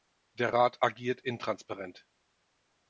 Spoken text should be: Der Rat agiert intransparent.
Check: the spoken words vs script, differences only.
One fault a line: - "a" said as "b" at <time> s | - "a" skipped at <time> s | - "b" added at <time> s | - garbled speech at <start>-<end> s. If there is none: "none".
none